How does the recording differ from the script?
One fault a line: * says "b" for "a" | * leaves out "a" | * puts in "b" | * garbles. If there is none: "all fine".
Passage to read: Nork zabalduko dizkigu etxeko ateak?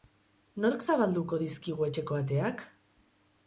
all fine